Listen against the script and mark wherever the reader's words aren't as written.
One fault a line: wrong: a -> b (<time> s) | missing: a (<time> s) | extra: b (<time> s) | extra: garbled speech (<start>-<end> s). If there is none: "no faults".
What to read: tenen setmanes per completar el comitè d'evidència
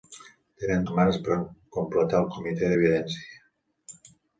no faults